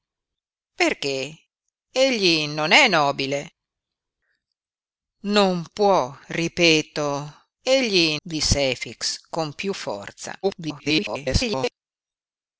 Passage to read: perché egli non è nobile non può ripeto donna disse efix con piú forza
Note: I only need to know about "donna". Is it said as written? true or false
false